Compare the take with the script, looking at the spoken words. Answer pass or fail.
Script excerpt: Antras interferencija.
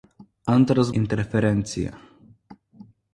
pass